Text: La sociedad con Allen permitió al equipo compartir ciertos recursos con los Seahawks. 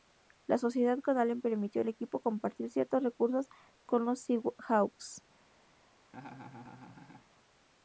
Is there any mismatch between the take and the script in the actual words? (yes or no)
no